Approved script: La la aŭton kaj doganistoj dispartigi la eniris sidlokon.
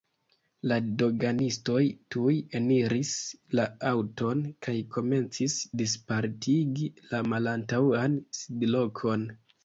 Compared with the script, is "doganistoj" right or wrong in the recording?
wrong